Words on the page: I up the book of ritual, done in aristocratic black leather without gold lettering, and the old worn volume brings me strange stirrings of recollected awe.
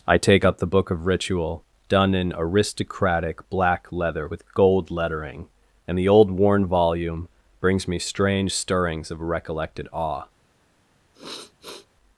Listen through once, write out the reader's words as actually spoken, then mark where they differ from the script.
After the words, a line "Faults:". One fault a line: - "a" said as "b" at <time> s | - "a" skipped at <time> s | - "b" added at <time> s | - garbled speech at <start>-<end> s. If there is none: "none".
I take up the book of ritual, done in aristocratic black leather with gold lettering, and the old worn volume brings me strange stirrings of recollected awe.
Faults:
- "take" added at 0.2 s
- "without" said as "with" at 4.2 s